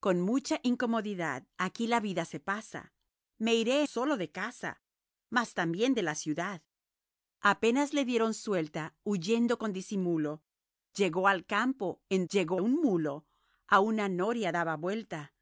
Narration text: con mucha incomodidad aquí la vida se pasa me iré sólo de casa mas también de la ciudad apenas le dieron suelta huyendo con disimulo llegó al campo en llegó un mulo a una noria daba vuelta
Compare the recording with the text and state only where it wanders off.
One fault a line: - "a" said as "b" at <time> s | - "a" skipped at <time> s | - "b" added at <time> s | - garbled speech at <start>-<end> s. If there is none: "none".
none